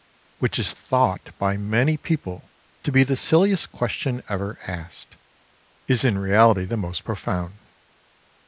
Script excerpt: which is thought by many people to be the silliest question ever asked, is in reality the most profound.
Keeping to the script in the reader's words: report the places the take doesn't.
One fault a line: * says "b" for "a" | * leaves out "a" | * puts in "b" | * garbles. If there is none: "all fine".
all fine